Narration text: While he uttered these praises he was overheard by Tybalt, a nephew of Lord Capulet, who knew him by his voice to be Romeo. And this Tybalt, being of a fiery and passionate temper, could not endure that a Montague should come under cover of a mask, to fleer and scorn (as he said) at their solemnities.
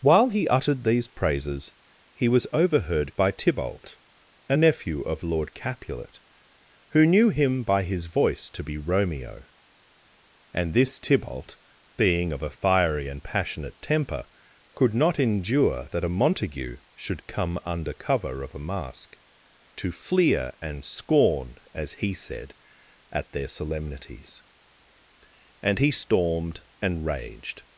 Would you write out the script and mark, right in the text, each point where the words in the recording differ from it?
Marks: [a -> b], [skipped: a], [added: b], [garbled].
While he uttered these praises he was overheard by Tybalt, a nephew of Lord Capulet, who knew him by his voice to be Romeo. And this Tybalt, being of a fiery and passionate temper, could not endure that a Montague should come under cover of a mask, to fleer and scorn (as he said) at their solemnities. [added: And he stormed and raged]